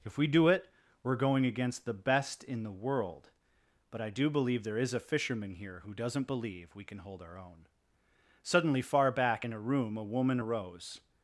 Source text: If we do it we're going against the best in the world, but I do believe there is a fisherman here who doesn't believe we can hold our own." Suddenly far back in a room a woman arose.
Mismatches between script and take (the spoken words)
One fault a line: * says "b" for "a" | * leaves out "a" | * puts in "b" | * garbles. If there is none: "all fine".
all fine